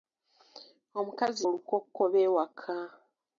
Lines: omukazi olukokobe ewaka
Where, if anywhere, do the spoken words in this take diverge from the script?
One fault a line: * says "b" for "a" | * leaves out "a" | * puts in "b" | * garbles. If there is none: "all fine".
all fine